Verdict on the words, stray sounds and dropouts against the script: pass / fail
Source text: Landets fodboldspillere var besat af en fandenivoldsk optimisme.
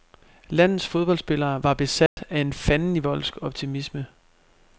fail